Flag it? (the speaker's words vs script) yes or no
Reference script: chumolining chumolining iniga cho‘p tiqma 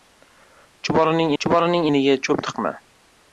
no